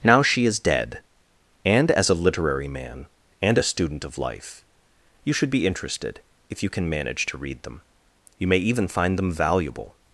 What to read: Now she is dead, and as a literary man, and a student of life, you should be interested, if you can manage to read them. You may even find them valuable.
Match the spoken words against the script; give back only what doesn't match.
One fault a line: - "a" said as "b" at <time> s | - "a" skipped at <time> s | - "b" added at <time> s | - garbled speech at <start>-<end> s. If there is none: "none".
none